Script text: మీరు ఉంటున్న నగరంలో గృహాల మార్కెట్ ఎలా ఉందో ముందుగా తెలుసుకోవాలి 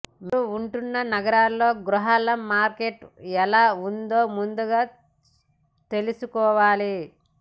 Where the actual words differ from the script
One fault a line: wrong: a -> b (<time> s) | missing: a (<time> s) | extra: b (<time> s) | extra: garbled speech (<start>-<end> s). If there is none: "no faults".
no faults